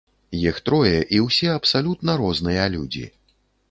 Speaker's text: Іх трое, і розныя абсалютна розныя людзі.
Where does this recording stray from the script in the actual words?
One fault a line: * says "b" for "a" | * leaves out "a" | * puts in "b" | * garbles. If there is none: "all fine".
* says "ўсе" for "розныя"